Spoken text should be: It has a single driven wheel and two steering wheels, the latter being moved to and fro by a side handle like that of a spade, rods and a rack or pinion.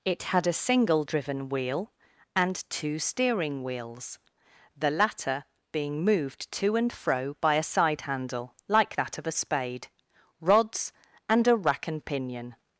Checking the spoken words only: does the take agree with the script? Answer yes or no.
no